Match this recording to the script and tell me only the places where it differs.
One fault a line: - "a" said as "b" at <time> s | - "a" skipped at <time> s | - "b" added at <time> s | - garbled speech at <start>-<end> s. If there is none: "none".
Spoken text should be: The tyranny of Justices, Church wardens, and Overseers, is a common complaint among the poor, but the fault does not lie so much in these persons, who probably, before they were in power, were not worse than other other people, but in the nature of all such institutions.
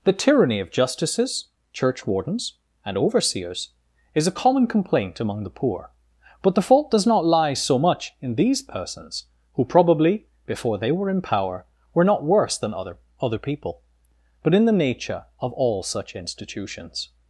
none